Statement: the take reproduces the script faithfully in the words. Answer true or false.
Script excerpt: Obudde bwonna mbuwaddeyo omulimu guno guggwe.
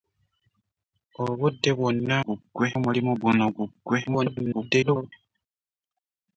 false